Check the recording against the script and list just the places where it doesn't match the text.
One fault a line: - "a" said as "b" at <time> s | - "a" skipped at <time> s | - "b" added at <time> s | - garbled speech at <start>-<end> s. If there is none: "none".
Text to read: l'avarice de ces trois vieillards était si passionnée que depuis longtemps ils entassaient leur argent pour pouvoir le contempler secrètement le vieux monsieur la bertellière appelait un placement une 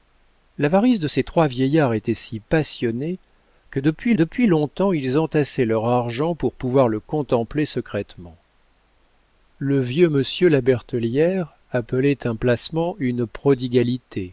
- "depuis" added at 4.1 s